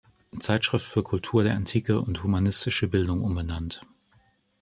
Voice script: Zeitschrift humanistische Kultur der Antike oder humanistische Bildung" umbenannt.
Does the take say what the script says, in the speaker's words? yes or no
no